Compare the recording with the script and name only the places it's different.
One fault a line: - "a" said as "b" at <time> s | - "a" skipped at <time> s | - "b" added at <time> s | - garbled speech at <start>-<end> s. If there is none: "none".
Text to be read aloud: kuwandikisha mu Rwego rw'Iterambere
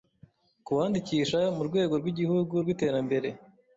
- "rw'Igihugu" added at 2.0 s